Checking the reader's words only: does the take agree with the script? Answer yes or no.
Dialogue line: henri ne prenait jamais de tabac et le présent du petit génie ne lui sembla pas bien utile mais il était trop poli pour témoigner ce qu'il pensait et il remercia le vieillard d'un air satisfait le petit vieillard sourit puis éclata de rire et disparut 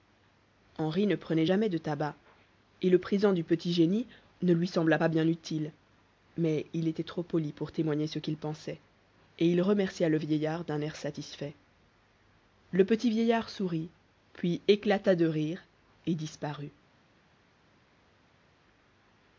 yes